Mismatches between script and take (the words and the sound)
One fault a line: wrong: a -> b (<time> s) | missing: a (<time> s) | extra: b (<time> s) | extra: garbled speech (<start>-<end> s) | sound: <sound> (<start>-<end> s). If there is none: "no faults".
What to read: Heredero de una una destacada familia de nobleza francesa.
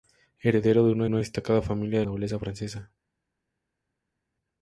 no faults